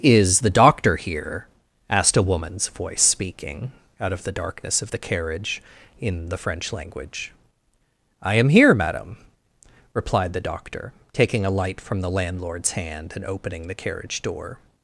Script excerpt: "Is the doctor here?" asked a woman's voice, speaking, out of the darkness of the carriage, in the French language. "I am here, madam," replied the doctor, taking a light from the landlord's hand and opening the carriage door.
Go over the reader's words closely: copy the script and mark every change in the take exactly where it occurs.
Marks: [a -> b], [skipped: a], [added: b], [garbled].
"Is the doctor here?" asked a woman's voice, speaking, out of the darkness of the carriage, in the French language. "I am here, madam," replied the doctor, taking a light from the landlord's hand and opening the carriage door.